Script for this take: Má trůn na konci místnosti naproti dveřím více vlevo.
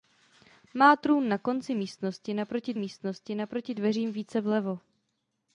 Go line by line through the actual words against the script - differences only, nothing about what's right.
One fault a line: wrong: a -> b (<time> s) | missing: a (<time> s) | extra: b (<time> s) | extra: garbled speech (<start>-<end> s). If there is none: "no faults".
extra: místnosti naproti (2.8 s)